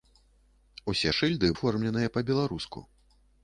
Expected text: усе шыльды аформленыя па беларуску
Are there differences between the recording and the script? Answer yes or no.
no